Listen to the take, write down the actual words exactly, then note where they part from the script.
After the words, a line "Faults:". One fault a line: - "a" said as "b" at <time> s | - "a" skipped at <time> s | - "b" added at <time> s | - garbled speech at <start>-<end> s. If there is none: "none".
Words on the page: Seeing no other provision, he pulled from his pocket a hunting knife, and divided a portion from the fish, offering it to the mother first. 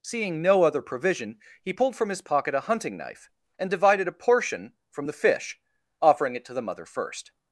Seeing no other provision, he pulled from his pocket a hunting knife, and divided a portion from the fish, offering it to the mother first.
Faults:
none